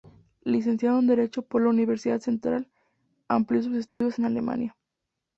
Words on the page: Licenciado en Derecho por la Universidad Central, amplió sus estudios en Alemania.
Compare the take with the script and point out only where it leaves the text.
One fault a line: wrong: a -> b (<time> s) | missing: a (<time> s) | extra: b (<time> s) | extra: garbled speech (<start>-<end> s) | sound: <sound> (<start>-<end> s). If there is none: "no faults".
sound: dropout (3.9-4.0 s)